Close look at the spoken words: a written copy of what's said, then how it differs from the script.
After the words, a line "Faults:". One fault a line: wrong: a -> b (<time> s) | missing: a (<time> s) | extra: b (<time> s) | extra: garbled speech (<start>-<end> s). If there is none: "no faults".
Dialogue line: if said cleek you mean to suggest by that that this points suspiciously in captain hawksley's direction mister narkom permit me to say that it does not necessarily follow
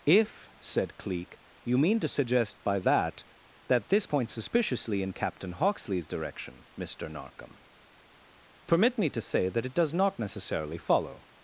if said cleek you mean to suggest by that that this points suspiciously in captain hawksley's direction mister narkom permit me to say that it does not necessarily follow
Faults:
no faults